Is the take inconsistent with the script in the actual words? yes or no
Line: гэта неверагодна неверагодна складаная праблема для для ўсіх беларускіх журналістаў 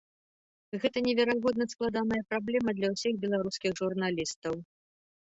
yes